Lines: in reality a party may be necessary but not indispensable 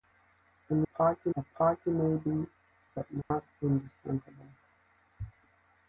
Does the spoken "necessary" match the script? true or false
false